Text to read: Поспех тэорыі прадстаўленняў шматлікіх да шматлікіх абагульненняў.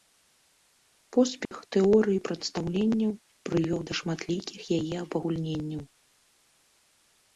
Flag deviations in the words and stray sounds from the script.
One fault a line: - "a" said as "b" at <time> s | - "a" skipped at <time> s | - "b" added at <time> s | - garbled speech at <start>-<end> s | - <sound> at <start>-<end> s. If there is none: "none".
- dropout at 1.5-1.5 s
- "шматлікіх" said as "прывёў" at 3.5 s
- "яе" added at 4.8 s